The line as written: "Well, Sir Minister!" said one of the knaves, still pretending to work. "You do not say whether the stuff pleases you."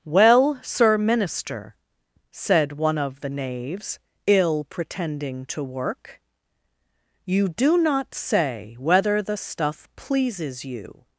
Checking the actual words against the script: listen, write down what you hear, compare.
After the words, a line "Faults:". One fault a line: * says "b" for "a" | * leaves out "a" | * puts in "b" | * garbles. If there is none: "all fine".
"Well, Sir Minister!" said one of the knaves, ill pretending to work. "You do not say whether the stuff pleases you."
Faults:
* says "ill" for "still"